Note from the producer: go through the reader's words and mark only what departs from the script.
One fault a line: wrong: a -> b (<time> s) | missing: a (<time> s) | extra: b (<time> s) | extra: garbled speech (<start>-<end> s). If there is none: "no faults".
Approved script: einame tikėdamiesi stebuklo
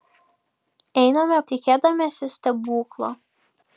no faults